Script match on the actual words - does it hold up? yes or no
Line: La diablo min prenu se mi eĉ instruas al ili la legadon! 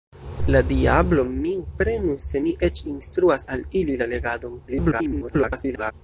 no